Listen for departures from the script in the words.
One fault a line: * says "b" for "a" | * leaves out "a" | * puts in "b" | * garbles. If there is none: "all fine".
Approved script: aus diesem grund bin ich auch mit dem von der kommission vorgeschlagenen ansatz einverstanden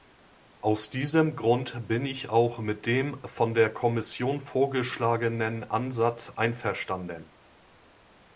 all fine